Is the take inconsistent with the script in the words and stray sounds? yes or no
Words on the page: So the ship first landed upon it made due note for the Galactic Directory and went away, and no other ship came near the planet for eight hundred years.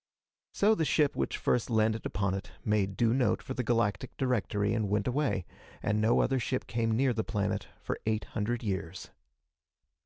yes